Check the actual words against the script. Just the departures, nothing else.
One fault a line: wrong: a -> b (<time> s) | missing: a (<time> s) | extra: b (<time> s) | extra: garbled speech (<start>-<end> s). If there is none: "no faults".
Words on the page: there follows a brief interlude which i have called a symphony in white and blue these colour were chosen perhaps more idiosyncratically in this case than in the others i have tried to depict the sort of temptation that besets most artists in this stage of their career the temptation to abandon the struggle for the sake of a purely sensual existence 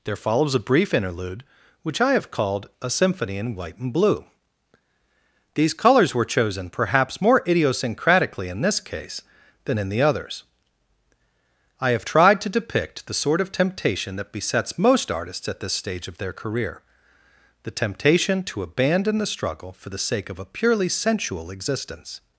wrong: colour -> colours (5.8 s)
wrong: in -> at (15.5 s)